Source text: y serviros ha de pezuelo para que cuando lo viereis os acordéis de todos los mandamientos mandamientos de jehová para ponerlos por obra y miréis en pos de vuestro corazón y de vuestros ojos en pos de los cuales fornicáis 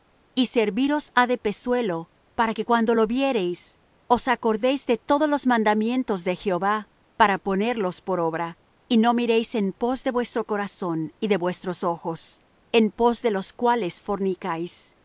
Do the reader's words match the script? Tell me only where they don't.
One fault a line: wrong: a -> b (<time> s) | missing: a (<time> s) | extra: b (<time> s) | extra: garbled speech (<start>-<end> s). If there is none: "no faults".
missing: mandamientos (6.2 s)
extra: no (9.0 s)